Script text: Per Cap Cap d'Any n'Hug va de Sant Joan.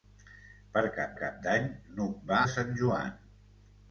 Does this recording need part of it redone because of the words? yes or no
no